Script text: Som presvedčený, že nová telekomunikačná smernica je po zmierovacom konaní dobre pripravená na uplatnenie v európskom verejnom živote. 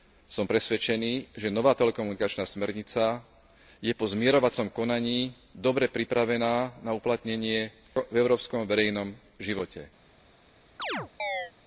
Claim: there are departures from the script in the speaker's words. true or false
false